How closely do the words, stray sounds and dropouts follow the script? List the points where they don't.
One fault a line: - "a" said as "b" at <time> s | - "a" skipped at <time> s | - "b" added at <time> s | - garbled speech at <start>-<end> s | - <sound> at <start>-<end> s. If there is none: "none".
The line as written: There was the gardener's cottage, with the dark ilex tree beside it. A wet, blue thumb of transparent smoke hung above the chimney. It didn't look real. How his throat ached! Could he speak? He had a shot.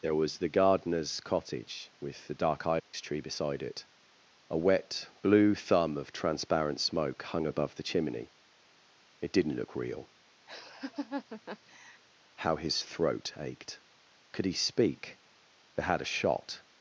- dropout at 2.8-2.9 s
- laugh at 10.5-12.0 s
- "He" said as "They" at 15.7 s